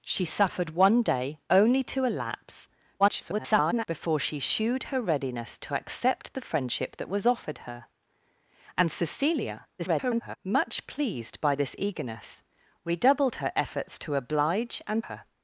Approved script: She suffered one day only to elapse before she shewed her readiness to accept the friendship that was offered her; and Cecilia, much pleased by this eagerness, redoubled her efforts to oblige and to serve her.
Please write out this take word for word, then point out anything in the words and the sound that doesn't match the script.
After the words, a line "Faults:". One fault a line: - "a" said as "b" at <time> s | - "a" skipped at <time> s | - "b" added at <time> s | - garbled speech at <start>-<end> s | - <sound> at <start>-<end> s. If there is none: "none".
She suffered one day only to elapse [garbled] before she shewed her readiness to accept the friendship that was offered her; and Cecilia, [garbled] much pleased by this eagerness, redoubled her efforts to oblige and her.
Faults:
- garbled speech at 3.0-3.9 s
- garbled speech at 9.8-10.4 s
- "to serve" skipped at 15.0 s